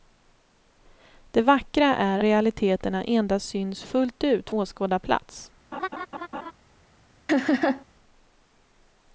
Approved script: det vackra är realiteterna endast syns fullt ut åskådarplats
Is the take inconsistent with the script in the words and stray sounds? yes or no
yes